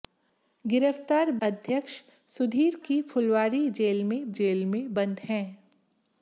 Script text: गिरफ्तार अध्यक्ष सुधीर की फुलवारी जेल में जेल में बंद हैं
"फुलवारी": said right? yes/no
yes